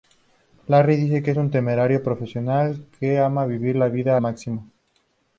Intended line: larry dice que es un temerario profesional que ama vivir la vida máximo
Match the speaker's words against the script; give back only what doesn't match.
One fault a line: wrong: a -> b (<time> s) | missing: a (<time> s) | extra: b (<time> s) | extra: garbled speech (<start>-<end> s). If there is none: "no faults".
no faults